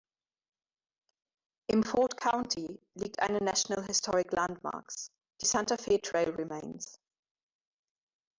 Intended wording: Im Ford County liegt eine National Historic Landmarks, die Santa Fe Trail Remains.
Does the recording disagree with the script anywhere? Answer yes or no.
no